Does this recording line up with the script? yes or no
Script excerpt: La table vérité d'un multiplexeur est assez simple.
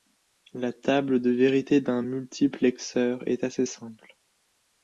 no